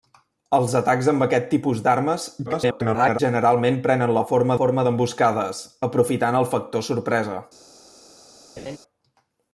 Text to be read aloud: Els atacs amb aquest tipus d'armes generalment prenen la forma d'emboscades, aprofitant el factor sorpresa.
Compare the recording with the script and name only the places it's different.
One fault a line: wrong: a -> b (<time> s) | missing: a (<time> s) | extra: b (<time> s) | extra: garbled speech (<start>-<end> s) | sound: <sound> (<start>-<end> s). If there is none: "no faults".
extra: garbled speech (2.5-3.2 s)
extra: forma (4.6 s)
sound: laugh (8.6-8.8 s)